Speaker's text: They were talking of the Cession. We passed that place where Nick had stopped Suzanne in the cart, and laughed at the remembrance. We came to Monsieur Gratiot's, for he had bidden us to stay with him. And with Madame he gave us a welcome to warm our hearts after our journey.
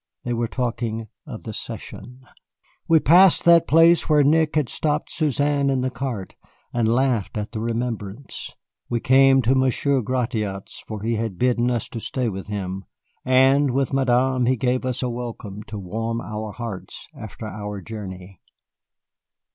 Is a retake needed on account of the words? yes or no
no